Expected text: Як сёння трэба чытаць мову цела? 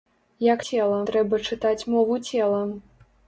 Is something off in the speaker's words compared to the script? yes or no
yes